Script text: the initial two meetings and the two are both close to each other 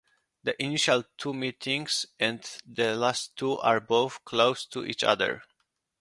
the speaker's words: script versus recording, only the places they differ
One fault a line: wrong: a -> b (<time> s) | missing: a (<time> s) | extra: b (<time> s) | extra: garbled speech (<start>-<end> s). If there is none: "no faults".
extra: last (3.0 s)